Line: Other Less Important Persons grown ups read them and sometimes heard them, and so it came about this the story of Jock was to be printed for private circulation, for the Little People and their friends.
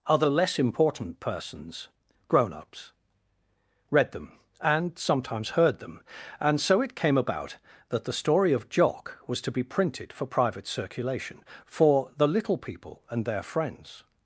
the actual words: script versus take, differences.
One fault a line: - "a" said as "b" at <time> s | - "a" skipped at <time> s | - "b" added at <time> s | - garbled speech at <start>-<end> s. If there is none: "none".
- "this" said as "that" at 7.9 s